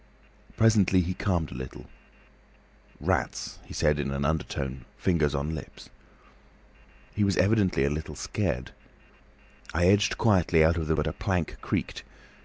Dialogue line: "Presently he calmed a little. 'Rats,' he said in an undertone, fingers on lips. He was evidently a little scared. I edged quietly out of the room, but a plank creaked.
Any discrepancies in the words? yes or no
yes